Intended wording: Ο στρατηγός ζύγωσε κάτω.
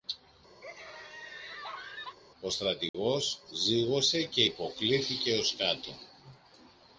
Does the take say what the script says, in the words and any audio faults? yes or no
no